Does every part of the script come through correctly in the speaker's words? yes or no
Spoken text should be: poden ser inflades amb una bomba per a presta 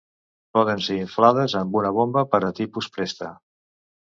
no